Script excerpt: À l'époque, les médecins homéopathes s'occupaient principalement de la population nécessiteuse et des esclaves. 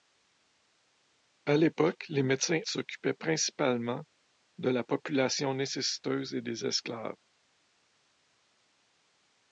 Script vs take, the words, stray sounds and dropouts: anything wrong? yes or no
yes